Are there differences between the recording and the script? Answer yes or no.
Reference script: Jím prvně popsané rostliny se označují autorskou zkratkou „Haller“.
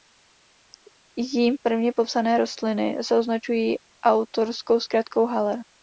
no